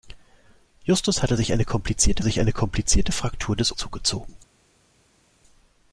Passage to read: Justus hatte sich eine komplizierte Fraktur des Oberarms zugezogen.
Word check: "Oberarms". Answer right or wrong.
wrong